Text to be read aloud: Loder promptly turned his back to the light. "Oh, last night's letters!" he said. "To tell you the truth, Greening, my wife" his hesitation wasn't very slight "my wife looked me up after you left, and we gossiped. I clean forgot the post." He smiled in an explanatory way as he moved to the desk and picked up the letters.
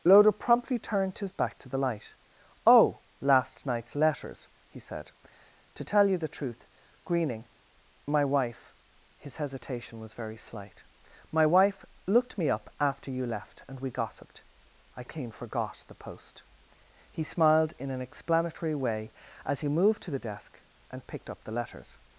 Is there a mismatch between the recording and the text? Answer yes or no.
yes